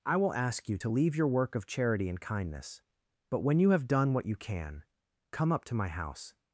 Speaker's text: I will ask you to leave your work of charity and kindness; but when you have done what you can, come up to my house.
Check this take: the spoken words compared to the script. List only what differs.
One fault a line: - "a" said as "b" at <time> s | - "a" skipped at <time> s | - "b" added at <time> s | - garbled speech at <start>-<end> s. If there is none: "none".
none